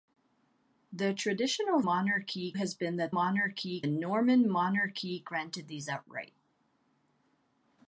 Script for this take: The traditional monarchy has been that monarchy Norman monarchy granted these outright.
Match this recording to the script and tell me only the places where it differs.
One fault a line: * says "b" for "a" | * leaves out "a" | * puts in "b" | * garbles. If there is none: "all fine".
all fine